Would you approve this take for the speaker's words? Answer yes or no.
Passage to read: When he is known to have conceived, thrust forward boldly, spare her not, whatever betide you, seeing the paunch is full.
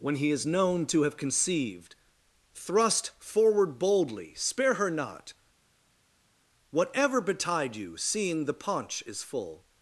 yes